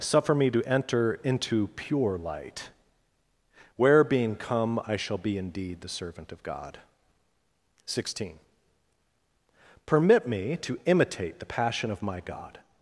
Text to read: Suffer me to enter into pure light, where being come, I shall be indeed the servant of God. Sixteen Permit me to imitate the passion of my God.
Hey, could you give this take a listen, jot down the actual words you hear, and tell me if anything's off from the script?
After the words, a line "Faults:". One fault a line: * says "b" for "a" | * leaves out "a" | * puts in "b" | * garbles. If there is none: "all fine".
Suffer me to enter into pure light, where being come, I shall be indeed the servant of God. Sixteen Permit me to imitate the passion of my God.
Faults:
all fine